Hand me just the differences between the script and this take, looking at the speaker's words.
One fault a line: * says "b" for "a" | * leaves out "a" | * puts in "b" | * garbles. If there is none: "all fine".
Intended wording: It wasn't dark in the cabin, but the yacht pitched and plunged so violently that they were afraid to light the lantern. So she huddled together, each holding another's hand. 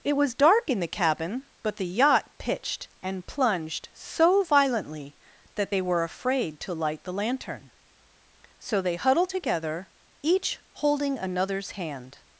* says "was" for "wasn't"
* says "they" for "she"